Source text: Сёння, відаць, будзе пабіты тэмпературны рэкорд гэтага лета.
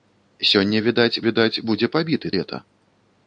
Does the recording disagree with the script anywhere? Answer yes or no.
yes